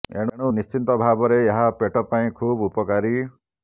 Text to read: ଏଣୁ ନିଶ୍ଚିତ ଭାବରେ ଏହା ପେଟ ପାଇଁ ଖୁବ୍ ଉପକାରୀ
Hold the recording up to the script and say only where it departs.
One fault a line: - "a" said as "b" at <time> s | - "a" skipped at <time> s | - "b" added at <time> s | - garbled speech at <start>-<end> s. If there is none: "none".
none